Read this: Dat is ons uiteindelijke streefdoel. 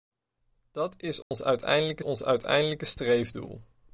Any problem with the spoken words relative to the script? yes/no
yes